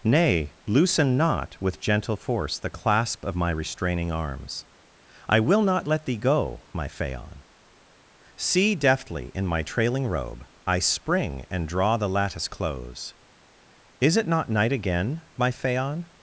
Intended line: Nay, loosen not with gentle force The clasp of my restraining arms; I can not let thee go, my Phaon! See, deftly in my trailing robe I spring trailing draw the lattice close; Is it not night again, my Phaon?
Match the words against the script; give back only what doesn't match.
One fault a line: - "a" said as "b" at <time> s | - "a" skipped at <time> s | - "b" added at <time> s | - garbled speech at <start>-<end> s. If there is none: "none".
- "can" said as "will" at 5.4 s
- "trailing" said as "and" at 11.5 s